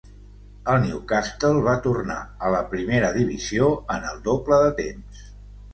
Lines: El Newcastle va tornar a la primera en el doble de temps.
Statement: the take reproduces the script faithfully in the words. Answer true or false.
false